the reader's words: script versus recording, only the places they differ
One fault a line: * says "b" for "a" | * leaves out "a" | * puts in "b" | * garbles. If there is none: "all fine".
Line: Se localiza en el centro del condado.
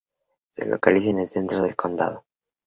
all fine